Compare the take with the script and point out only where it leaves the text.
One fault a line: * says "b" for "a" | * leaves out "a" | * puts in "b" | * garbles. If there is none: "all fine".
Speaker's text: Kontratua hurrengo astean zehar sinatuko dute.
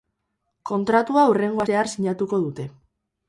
* leaves out "astean"